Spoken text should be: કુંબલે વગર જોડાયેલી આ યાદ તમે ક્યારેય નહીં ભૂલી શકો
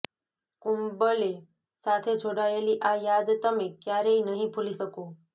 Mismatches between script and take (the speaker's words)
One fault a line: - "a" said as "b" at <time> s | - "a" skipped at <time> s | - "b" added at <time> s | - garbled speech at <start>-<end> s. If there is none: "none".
- "વગર" said as "સાથે" at 1.9 s